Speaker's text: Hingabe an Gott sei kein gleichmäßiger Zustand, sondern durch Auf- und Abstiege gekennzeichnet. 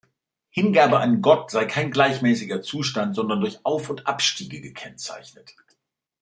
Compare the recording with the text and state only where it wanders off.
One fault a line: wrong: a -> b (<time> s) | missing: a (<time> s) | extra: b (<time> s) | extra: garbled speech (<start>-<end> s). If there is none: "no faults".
no faults